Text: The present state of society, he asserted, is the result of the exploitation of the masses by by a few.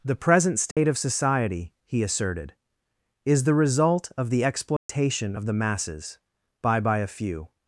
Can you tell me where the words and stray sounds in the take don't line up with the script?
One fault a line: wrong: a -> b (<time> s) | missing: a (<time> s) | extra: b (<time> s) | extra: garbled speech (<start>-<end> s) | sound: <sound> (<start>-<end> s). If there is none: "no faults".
sound: dropout (0.7-0.8 s)
sound: dropout (4.8-4.9 s)